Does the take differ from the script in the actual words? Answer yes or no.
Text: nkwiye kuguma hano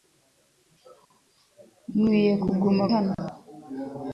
no